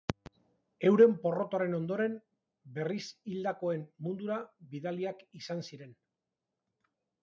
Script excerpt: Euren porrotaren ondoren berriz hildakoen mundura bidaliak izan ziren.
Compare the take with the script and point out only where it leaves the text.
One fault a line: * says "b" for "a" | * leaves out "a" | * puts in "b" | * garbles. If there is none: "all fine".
all fine